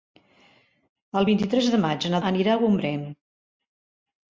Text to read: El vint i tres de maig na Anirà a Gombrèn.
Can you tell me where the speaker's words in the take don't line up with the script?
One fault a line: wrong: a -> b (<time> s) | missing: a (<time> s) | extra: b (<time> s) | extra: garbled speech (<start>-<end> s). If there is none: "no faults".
no faults